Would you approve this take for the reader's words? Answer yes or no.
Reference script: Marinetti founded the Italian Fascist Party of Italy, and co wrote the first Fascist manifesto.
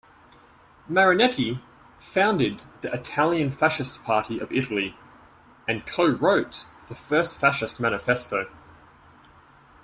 yes